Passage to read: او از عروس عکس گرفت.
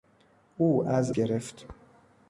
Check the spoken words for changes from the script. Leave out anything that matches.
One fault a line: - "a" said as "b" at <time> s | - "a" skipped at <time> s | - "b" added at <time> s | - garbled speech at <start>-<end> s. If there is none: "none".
- "عروس عکس" skipped at 1.1 s